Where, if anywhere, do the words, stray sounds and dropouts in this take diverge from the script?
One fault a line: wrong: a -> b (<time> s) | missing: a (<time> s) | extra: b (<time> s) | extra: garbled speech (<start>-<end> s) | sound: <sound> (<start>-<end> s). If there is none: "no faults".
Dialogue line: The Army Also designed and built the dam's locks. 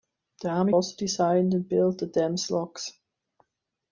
no faults